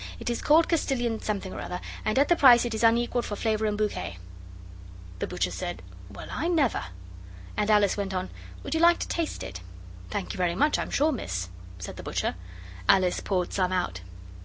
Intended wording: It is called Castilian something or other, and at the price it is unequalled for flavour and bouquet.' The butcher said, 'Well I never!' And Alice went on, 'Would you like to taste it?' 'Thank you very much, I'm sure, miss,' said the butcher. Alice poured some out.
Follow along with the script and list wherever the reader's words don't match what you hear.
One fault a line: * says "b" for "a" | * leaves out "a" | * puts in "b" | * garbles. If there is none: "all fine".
all fine